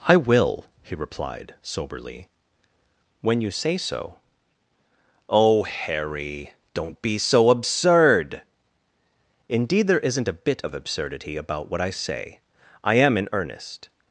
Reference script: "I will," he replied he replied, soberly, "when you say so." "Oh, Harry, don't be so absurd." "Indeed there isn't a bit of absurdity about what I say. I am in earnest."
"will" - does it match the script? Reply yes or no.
yes